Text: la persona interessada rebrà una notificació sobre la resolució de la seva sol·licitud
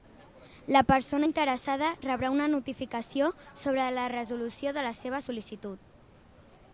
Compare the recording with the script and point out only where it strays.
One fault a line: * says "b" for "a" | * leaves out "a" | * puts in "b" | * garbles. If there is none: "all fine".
all fine